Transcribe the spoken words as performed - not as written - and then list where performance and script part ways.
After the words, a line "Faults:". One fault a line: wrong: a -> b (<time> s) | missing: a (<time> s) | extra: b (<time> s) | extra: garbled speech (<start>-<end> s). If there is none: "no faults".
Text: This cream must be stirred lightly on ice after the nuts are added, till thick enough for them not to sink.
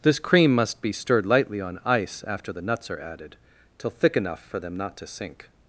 This cream must be stirred lightly on ice after the nuts are added, till thick enough for them not to sink.
Faults:
no faults